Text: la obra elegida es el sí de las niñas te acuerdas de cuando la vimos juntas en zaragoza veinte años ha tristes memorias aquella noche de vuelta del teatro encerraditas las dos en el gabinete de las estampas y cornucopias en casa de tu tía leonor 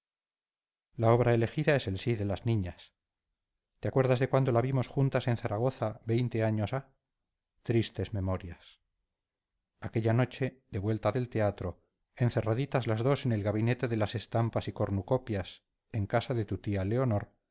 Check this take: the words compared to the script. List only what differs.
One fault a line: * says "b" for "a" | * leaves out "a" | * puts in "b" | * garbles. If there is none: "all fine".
all fine